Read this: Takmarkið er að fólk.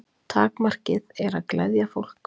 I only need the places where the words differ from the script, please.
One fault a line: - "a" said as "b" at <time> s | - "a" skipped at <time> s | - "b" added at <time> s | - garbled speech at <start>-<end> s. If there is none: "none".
- "gleðja" added at 1.6 s